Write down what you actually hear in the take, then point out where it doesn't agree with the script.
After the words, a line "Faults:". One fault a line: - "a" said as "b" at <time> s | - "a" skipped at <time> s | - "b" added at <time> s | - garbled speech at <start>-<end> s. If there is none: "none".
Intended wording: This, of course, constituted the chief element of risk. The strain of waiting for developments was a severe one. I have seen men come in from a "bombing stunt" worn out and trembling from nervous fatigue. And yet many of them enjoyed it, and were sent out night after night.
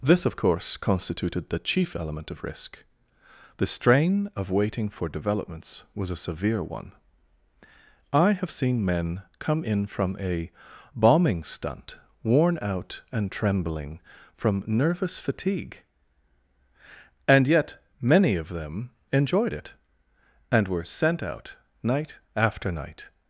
This, of course, constituted the chief element of risk. The strain of waiting for developments was a severe one. I have seen men come in from a "bombing stunt" worn out and trembling from nervous fatigue. And yet many of them enjoyed it, and were sent out night after night.
Faults:
none